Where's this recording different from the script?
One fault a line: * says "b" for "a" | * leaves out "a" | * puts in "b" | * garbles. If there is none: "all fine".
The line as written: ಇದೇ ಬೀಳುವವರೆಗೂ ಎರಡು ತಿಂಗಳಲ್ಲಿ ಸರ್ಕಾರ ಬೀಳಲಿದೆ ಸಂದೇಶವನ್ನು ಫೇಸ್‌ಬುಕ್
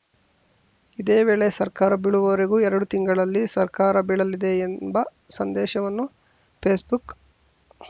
* puts in "ವೇಳೆ ಸರ್ಕಾರ"
* puts in "ಎಂಬ"